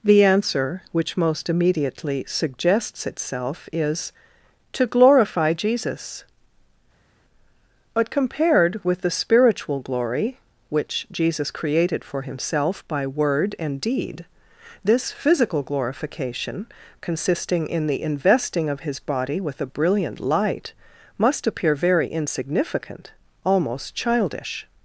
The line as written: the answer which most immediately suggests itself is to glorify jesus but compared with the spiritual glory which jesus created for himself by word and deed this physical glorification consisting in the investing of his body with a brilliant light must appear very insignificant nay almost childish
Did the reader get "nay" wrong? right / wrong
wrong